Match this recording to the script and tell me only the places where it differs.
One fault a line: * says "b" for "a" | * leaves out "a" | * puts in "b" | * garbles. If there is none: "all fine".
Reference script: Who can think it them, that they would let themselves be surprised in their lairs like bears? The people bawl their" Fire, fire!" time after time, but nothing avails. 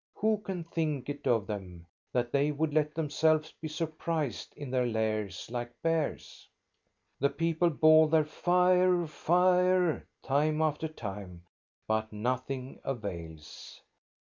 * puts in "of"